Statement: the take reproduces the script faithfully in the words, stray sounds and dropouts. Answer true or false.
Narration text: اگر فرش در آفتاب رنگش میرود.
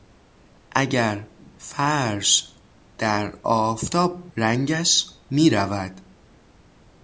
true